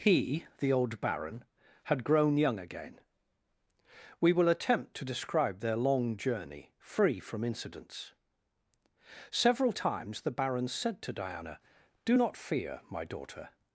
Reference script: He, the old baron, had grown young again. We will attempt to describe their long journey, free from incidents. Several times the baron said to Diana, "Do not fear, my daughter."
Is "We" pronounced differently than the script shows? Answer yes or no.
no